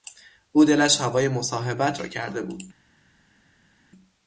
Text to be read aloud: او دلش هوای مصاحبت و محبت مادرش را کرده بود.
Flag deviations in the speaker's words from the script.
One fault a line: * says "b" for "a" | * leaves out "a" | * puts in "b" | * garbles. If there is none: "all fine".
* leaves out "و محبت مادرش"